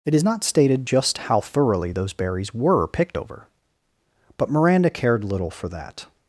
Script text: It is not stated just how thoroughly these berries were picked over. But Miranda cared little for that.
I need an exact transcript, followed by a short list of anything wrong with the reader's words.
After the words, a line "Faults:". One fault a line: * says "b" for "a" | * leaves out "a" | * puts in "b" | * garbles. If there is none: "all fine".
It is not stated just how thoroughly those berries were picked over. But Miranda cared little for that.
Faults:
* says "those" for "these"